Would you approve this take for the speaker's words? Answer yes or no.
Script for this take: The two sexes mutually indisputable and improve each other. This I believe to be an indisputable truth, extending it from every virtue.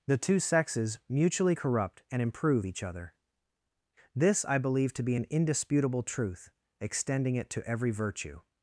no